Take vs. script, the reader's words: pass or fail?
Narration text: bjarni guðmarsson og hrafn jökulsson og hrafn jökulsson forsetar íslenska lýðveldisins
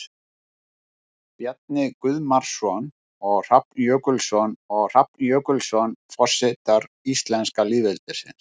pass